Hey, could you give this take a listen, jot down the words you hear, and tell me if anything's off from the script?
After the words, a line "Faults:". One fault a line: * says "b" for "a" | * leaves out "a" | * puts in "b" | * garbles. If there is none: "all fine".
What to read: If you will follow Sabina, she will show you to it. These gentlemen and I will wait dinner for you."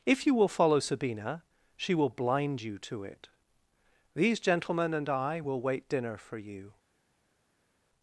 If you will follow Sabina, she will blind you to it. These gentlemen and I will wait dinner for you."
Faults:
* says "blind" for "show"